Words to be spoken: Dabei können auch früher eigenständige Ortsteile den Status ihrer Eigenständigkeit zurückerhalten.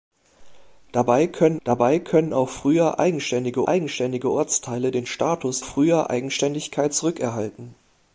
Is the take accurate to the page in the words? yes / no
no